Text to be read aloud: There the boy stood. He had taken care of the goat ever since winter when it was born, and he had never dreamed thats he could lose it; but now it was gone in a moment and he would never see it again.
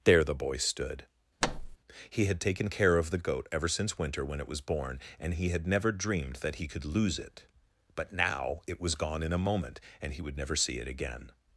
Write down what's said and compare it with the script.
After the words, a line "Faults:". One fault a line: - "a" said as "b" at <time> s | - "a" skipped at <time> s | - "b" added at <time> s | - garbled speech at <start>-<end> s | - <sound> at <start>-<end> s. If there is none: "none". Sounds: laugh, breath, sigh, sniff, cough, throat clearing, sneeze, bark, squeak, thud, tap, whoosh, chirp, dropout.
There the boy stood. He had taken care of the goat ever since winter when it was born, and he had never dreamed that he could lose it; but now it was gone in a moment and he would never see it again.
Faults:
- thud at 1.4-1.8 s
- "thats" said as "that" at 6.4 s